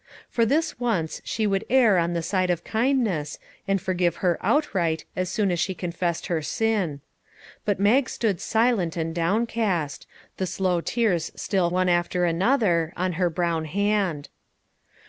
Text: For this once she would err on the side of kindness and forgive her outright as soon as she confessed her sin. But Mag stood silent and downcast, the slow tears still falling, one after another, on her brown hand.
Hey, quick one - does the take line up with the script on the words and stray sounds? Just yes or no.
no